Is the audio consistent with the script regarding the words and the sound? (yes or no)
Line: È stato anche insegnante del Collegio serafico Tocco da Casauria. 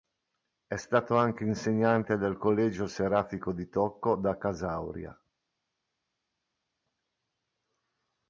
no